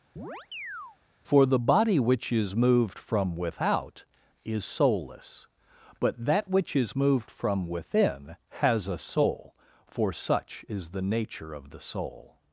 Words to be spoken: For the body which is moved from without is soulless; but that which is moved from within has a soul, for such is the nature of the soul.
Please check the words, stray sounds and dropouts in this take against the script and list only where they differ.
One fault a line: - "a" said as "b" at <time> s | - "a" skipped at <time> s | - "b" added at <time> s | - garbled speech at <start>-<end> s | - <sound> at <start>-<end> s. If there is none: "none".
- chirp at 0.2-1.0 s